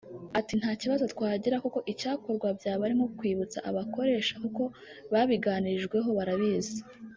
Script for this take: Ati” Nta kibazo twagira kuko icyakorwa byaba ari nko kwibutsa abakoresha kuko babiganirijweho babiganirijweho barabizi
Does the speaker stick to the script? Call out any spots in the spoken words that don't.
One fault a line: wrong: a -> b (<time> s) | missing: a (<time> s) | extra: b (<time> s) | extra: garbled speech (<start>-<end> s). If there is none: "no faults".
missing: babiganirijweho (6.1 s)